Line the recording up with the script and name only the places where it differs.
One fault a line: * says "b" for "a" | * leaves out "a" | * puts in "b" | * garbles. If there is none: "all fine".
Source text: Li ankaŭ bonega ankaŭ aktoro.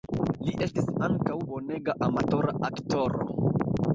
* puts in "estis"
* says "amatora" for "ankaŭ"